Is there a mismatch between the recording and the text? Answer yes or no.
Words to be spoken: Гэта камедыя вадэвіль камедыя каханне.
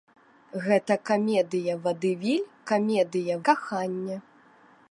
no